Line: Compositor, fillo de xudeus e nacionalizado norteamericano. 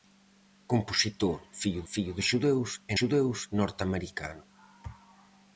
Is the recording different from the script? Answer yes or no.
yes